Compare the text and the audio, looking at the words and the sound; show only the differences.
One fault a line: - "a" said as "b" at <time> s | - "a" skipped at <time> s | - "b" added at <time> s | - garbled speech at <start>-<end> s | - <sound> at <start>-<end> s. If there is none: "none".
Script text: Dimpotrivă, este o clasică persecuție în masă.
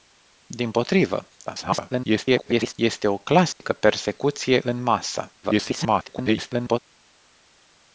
- garbled speech at 1.5-2.7 s
- dropout at 3.5-3.6 s
- garbled speech at 5.4-6.8 s